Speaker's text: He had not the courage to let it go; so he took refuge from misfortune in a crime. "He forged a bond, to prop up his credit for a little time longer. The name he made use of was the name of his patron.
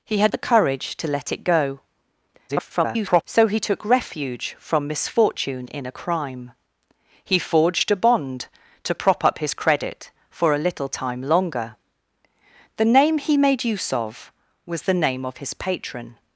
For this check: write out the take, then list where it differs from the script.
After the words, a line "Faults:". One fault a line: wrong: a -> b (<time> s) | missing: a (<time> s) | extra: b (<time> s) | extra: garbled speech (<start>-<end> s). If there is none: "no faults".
He had the courage to let it go; [garbled] so he took refuge from misfortune in a crime. "He forged a bond, to prop up his credit for a little time longer. The name he made use of was the name of his patron.
Faults:
missing: not (0.3 s)
extra: garbled speech (2.5-3.2 s)